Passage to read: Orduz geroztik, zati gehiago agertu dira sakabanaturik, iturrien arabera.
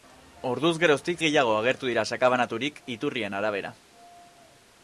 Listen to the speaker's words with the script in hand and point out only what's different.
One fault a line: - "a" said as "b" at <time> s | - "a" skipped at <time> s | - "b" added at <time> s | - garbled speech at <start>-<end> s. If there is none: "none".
- "zati" skipped at 1.2 s